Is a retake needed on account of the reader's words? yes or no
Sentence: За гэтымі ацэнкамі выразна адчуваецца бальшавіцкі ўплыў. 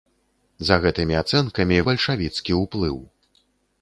yes